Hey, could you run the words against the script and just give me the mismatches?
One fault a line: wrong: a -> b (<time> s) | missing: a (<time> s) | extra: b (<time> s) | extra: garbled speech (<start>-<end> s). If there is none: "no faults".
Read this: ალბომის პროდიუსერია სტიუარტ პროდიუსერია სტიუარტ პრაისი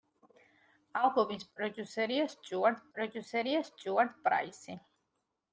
no faults